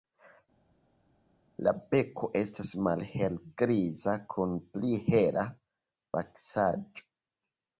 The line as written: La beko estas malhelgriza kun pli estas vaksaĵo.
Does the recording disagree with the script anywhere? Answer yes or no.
yes